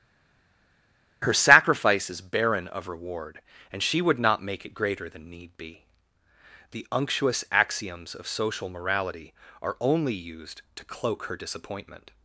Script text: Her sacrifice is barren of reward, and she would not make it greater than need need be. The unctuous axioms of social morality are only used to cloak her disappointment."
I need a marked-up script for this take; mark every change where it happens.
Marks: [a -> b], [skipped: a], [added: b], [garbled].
Her sacrifice is barren of reward, and she would not make it greater than need [skipped: need] be. The unctuous axioms of social morality are only used to cloak her disappointment."